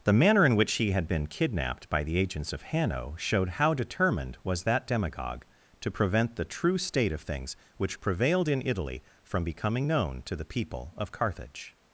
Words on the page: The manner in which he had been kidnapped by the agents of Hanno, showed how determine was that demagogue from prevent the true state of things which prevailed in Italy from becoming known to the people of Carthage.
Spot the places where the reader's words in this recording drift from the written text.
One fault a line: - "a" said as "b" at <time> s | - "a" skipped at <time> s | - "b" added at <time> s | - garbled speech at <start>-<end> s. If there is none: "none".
- "determine" said as "determined" at 3.8 s
- "from" said as "to" at 5.8 s